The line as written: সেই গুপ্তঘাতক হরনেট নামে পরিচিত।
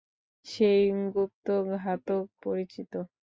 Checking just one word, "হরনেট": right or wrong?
wrong